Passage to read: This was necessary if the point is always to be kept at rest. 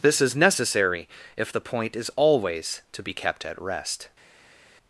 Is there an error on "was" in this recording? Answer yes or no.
yes